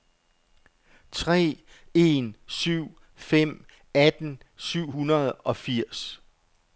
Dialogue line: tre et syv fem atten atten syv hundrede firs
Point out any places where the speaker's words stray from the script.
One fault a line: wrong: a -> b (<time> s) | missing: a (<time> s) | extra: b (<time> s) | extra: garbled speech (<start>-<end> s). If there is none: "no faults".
wrong: et -> en (1.9 s)
missing: atten (4.4 s)
extra: og (5.3 s)